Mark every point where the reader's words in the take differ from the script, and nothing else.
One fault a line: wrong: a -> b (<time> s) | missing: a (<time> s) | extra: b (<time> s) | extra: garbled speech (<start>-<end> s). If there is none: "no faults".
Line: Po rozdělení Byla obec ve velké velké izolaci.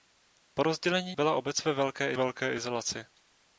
no faults